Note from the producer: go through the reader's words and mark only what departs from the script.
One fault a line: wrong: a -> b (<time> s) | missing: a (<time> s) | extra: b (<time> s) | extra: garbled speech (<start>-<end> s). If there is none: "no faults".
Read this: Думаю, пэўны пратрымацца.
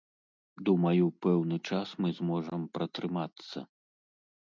extra: час мы зможам (1.7 s)